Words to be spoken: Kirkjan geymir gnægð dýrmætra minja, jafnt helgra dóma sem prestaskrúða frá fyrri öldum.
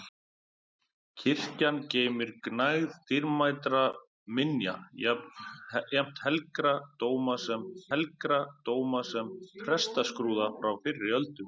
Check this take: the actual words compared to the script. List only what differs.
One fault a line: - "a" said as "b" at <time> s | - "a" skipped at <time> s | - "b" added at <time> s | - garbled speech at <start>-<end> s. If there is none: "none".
- "helgra dóma sem" added at 7.9 s